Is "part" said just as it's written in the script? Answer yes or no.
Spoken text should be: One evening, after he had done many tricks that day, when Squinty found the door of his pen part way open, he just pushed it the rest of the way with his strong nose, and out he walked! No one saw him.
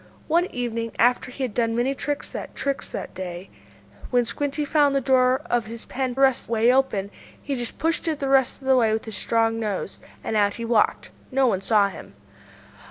no